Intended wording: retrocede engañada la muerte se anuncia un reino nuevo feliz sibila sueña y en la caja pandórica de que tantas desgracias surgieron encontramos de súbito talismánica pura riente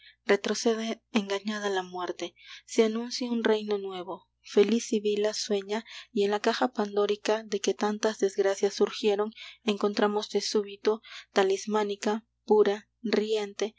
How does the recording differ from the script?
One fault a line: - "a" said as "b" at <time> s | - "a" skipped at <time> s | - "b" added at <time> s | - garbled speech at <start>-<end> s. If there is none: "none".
none